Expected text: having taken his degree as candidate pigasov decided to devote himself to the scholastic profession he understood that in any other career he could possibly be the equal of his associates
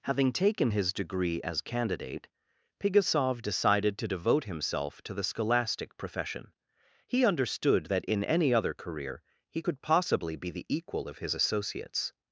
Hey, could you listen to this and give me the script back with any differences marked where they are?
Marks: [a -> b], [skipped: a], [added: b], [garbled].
having taken his degree as candidate pigasov decided to devote himself to the scholastic profession he understood that in any other career he could possibly be the equal of his associates